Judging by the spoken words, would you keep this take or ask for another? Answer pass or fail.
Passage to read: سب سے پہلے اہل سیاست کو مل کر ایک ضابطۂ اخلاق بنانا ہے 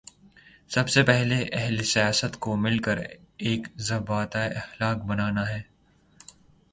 pass